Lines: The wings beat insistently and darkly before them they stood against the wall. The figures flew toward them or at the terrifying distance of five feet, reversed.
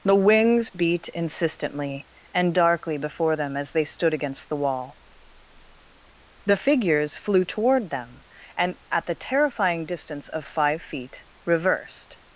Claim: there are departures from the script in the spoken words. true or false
true